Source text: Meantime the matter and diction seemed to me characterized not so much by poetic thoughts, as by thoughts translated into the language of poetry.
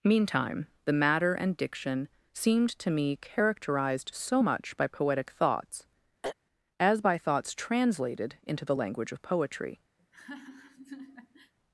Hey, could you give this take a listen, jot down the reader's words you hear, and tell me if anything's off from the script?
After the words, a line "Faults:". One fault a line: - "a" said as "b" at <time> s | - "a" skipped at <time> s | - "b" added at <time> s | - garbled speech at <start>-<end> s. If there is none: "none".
Meantime the matter and diction seemed to me characterized so much by poetic thoughts, as by thoughts translated into the language of poetry.
Faults:
- "not" skipped at 4.1 s